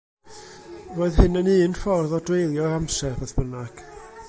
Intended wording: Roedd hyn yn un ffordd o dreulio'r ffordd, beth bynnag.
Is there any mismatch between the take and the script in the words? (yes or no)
yes